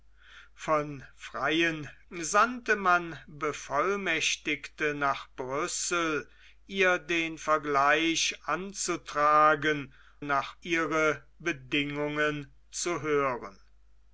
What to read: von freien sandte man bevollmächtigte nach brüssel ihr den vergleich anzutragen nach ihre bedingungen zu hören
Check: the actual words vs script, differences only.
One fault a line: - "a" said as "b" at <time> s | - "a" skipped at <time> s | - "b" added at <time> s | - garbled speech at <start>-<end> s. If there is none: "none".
none